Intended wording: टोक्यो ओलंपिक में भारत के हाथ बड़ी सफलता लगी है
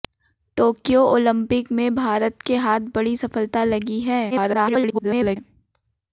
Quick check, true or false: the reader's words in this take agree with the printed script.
false